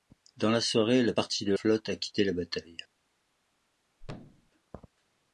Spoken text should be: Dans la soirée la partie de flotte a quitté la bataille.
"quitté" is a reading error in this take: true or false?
false